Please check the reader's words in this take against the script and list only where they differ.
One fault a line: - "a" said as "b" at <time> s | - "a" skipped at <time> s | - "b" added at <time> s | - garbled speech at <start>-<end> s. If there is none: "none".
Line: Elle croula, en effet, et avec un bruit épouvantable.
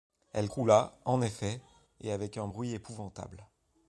none